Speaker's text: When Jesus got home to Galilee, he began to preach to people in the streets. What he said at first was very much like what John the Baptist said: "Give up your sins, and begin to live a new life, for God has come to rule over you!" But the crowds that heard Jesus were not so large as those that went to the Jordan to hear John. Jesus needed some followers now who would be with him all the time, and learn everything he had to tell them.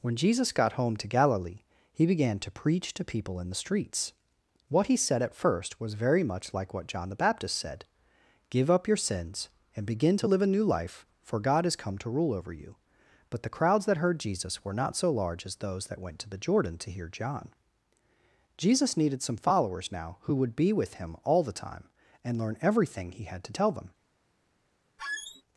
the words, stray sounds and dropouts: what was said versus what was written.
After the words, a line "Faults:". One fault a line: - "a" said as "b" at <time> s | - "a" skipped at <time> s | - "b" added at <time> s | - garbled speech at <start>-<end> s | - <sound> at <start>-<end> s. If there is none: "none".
When Jesus got home to Galilee, he began to preach to people in the streets. What he said at first was very much like what John the Baptist said: "Give up your sins, and begin to live a new life, for God has come to rule over you!" But the crowds that heard Jesus were not so large as those that went to the Jordan to hear John. Jesus needed some followers now who would be with him all the time, and learn everything he had to tell them.
Faults:
- squeak at 25.0-25.4 s